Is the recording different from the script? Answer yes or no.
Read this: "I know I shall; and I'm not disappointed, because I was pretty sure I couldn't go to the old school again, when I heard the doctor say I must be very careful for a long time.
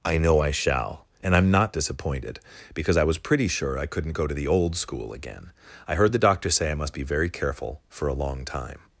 yes